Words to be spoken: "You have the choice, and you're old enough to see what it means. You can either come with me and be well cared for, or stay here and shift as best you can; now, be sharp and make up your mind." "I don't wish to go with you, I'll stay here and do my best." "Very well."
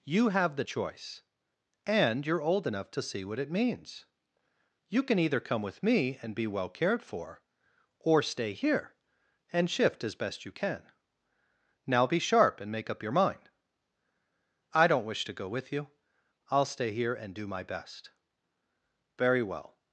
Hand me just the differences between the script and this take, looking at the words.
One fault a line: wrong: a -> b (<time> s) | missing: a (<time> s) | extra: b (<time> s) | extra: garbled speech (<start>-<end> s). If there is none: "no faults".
no faults